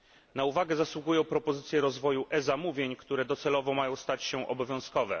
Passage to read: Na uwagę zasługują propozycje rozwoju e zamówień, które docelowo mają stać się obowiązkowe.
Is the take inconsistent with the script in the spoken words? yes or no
no